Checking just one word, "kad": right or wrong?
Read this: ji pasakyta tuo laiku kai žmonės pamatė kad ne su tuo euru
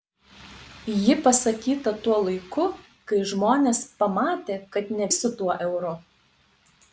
right